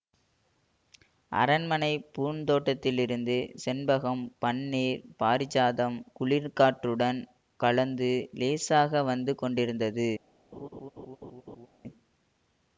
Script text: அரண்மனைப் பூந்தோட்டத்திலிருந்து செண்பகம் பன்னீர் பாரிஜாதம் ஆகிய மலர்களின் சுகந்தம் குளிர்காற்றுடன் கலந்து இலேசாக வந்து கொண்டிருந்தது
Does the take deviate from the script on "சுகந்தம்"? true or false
true